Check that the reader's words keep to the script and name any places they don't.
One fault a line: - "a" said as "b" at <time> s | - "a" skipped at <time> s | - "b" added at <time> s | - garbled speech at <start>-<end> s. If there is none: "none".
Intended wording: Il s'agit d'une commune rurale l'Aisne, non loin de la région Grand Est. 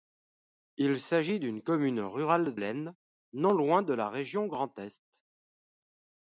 none